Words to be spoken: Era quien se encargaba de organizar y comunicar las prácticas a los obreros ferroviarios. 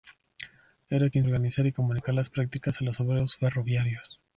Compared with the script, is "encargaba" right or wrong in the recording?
wrong